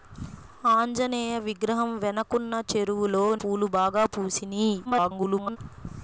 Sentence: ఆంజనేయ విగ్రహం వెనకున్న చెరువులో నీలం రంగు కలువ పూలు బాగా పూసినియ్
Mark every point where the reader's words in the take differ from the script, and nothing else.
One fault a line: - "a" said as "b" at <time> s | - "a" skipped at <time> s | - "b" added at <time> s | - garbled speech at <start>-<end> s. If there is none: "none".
- "నీలం రంగు కలువ" skipped at 3.2 s
- garbled speech at 4.8-5.6 s